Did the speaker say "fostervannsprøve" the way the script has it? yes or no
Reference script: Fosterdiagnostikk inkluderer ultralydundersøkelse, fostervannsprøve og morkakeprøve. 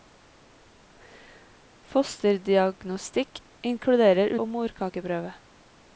no